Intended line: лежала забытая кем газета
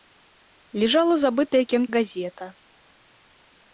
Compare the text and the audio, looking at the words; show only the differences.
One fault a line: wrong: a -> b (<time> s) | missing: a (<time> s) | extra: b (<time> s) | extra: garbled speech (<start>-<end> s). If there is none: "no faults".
no faults